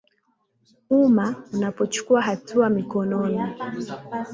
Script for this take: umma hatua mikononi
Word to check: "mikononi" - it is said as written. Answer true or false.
true